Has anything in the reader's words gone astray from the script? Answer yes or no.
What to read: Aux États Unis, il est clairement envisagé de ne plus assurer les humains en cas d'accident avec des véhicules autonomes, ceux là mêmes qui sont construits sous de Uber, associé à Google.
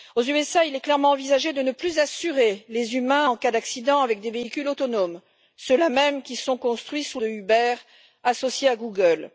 no